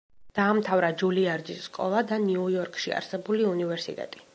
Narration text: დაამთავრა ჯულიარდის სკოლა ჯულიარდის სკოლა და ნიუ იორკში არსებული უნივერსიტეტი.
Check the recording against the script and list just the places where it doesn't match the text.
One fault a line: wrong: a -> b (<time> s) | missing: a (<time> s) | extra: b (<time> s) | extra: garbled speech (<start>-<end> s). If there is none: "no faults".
missing: ჯულიარდის სკოლა (2.0 s)